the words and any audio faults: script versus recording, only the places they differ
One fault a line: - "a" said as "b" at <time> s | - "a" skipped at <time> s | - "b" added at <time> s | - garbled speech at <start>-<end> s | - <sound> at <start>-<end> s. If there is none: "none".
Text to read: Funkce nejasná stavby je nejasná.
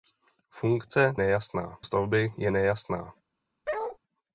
- bark at 3.7-4.0 s